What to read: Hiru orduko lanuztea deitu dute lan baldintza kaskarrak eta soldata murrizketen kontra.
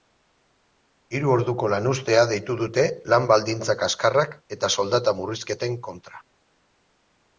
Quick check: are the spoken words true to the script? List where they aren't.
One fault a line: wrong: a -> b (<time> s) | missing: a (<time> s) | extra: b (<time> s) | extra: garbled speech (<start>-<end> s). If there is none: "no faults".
no faults